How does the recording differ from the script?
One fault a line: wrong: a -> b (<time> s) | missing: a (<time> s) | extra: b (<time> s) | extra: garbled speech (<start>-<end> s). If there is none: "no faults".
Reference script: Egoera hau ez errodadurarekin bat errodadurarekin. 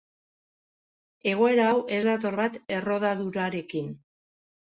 wrong: errodadurarekin -> dator (2.1 s)